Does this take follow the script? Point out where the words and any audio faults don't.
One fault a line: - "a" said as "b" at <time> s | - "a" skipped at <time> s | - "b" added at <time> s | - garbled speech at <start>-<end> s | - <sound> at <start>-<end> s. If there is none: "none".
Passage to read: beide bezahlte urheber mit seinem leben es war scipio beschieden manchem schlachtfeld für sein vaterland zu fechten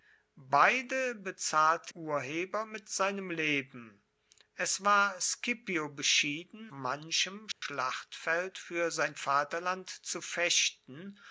- dropout at 7.5-7.6 s